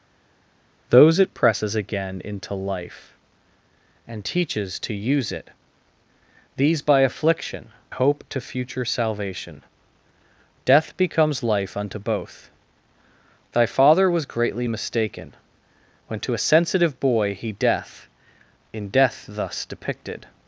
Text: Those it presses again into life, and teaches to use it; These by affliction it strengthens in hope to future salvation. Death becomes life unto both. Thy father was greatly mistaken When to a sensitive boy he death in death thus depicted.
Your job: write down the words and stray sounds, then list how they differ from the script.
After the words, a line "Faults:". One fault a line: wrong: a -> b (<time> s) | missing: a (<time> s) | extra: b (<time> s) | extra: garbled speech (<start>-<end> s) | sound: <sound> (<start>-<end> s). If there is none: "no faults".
Those it presses again into life, and teaches to use it; These by affliction hope to future salvation. Death becomes life unto both. Thy father was greatly mistaken When to a sensitive boy he death in death thus depicted.
Faults:
missing: it strengthens in (7.7 s)